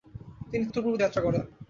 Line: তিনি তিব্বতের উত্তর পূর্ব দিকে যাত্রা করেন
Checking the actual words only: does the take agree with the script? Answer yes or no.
no